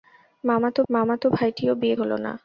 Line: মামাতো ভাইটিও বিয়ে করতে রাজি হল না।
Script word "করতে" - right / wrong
wrong